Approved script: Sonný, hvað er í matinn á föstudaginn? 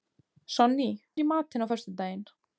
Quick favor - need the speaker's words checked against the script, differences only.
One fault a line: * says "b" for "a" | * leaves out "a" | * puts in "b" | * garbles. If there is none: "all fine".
* leaves out "hvað"